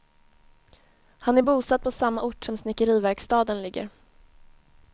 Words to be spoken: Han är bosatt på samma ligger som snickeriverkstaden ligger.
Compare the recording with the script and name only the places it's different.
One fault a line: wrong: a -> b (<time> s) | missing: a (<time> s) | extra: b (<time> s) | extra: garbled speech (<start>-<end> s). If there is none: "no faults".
wrong: ligger -> ort (2.2 s)